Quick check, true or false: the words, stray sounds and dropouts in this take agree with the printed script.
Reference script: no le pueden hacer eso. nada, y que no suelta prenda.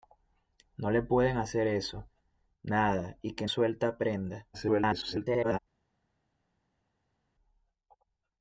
false